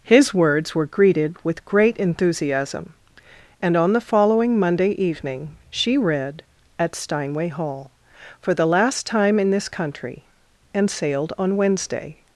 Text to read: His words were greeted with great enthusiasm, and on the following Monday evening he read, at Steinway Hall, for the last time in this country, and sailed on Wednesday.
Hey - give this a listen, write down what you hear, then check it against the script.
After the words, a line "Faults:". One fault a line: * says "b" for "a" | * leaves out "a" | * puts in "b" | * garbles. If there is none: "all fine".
His words were greeted with great enthusiasm, and on the following Monday evening she read, at Steinway Hall, for the last time in this country, and sailed on Wednesday.
Faults:
* says "she" for "he"